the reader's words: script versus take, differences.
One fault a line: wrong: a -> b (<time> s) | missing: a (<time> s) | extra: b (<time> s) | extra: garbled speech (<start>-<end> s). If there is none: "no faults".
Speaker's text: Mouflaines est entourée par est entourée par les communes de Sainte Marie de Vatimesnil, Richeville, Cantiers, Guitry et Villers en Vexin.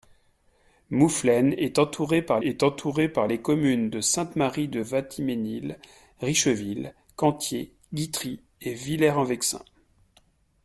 no faults